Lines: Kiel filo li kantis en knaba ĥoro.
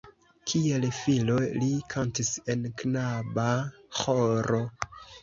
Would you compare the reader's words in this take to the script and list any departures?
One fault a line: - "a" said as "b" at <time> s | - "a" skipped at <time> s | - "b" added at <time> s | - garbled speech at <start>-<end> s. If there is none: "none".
none